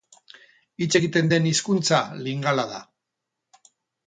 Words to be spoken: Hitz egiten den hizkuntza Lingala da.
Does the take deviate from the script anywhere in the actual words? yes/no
no